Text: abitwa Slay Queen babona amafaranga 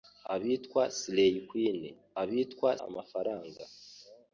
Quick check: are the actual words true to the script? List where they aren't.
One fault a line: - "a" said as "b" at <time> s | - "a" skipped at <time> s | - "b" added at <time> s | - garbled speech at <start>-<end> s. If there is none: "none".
- "babona" said as "abitwa" at 2.2 s